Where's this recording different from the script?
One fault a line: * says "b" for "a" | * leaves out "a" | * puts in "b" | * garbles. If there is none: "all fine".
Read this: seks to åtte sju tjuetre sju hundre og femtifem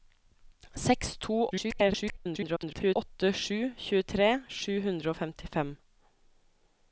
* garbles